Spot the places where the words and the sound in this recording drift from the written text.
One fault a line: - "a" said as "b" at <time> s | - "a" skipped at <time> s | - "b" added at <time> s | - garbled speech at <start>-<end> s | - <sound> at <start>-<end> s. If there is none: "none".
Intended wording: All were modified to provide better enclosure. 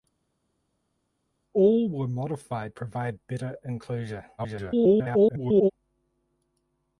- "to" skipped at 2.8 s
- garbled speech at 4.4-5.7 s